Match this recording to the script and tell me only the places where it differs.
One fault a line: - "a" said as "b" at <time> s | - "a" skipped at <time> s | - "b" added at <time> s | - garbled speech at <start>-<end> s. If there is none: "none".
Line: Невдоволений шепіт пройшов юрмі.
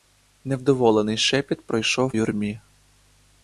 none